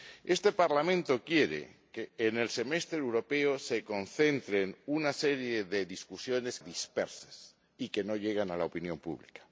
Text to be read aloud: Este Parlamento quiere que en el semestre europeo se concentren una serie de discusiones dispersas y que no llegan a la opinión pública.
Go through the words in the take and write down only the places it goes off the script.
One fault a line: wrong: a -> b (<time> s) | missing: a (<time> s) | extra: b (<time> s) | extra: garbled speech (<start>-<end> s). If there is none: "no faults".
no faults